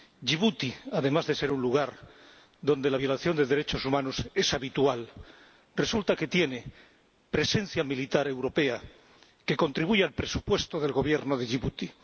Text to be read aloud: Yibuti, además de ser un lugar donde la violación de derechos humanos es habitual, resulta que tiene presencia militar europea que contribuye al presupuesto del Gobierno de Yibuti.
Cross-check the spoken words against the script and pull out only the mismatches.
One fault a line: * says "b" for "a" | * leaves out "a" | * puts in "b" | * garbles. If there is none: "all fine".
all fine